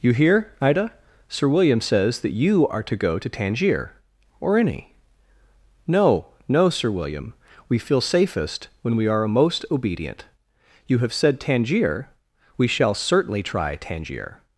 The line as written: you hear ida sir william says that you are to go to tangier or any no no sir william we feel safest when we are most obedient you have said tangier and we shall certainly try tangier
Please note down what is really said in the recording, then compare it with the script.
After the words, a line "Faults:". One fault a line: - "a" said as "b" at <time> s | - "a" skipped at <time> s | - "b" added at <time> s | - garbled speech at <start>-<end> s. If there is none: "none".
you hear ida sir william says that you are to go to tangier or any no no sir william we feel safest when we are most obedient you have said tangier we shall certainly try tangier
Faults:
- "and" skipped at 12.1 s